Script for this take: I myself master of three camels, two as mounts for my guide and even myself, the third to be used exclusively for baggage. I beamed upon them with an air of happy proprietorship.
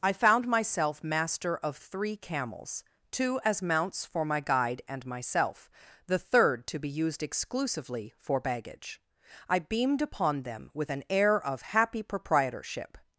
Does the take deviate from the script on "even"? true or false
true